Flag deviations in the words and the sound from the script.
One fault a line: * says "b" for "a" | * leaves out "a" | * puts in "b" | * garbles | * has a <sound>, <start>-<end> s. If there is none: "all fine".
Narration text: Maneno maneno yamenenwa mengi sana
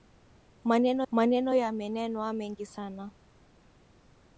all fine